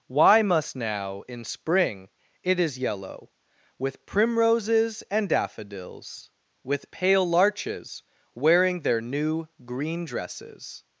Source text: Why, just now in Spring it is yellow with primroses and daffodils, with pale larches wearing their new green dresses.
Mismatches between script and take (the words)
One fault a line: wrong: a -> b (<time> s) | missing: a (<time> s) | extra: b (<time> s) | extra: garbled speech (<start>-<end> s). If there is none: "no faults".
wrong: just -> must (0.4 s)